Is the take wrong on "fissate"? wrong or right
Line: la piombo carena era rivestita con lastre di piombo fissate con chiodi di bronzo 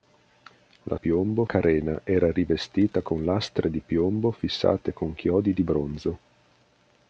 right